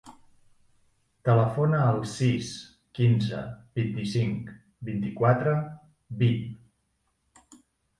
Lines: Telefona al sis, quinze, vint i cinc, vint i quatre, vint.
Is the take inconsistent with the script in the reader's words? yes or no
no